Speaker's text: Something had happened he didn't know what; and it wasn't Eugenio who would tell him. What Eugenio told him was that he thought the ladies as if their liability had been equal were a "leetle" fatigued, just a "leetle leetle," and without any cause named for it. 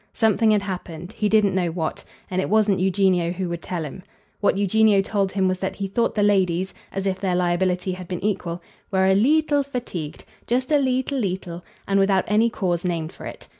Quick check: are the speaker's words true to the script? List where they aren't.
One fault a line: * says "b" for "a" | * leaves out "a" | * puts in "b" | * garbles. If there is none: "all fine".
all fine